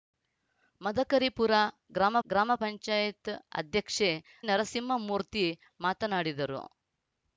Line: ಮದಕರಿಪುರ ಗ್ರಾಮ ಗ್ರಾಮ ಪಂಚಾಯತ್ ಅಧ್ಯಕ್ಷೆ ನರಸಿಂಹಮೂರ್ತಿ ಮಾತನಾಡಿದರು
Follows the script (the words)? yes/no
yes